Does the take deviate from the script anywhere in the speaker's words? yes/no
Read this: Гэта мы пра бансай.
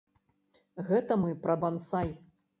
no